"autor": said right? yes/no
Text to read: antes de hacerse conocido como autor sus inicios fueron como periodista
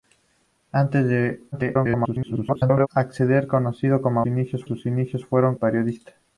no